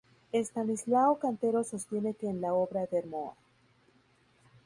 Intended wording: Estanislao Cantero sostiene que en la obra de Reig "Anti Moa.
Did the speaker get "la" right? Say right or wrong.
right